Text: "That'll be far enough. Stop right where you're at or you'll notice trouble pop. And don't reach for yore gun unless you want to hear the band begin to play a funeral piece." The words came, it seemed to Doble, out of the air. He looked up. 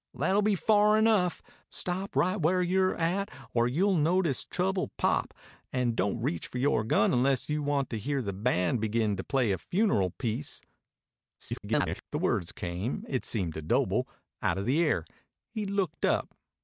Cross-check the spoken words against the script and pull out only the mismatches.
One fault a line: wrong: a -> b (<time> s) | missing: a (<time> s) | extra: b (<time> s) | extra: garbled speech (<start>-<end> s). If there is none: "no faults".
extra: garbled speech (11.4-12.0 s)